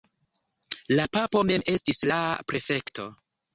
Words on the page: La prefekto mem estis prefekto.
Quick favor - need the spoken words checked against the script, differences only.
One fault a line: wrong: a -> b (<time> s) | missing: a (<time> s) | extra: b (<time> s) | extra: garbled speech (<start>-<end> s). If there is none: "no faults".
wrong: prefekto -> papo (1.2 s)
extra: la (2.1 s)